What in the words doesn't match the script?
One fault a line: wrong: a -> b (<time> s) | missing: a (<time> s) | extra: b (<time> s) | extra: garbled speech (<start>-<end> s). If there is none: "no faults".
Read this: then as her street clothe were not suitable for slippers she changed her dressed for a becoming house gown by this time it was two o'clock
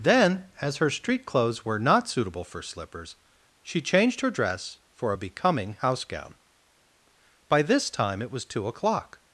wrong: clothe -> clothes (1.3 s)
wrong: dressed -> dress (4.3 s)